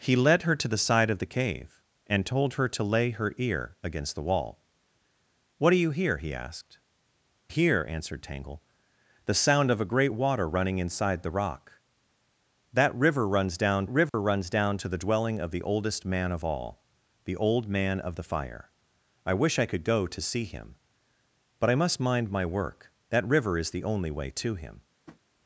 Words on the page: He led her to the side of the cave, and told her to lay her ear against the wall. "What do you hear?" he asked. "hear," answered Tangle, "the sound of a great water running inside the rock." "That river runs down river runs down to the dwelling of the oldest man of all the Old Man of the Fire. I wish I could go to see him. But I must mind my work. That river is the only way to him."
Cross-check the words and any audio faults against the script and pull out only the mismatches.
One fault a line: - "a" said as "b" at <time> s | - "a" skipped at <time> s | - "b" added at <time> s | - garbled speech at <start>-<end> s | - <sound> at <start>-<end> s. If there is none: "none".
- dropout at 14.1-14.1 s
- tap at 25.1-25.2 s